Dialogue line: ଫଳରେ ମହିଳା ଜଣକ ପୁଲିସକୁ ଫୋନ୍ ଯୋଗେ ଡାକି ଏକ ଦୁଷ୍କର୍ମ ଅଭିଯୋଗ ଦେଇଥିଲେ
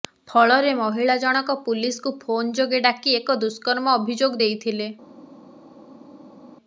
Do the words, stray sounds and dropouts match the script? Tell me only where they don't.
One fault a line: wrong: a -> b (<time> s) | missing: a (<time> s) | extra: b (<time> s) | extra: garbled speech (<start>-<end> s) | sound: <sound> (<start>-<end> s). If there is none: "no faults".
no faults